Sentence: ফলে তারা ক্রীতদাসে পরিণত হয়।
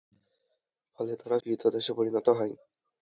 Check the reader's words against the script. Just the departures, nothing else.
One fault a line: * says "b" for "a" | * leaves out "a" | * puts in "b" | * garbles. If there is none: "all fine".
all fine